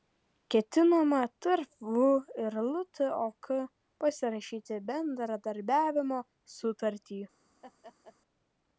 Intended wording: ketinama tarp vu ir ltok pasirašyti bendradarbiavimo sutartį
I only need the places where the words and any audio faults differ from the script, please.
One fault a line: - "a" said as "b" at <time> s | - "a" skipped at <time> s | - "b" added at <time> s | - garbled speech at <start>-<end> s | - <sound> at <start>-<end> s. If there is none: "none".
- laugh at 7.6-8.2 s